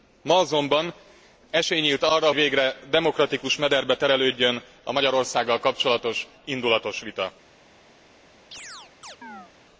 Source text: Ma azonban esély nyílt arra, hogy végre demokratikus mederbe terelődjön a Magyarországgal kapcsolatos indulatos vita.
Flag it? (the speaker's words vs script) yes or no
yes